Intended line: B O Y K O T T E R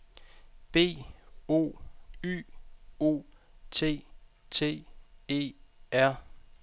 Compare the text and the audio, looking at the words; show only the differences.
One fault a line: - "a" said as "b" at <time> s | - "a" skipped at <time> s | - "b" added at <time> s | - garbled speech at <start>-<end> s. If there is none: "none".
- "K" skipped at 2.4 s